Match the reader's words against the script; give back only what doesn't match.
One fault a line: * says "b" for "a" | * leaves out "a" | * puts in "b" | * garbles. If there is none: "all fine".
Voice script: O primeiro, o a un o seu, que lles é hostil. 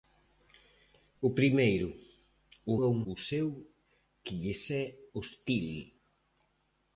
all fine